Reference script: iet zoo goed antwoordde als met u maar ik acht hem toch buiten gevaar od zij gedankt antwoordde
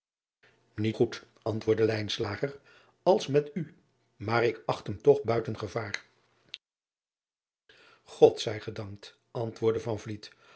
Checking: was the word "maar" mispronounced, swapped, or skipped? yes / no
no